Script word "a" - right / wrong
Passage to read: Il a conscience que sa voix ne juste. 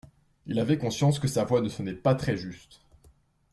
wrong